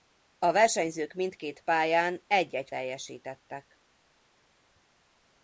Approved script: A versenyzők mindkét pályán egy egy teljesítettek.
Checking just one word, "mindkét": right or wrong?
right